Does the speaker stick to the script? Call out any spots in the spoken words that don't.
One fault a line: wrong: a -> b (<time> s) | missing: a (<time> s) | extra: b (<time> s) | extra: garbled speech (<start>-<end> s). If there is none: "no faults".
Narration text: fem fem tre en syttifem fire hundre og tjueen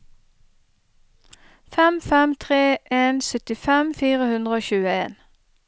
no faults